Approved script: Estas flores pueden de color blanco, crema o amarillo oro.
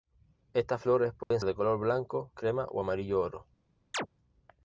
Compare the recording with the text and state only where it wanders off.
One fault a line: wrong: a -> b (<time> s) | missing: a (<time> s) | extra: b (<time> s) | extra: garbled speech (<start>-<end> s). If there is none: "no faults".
no faults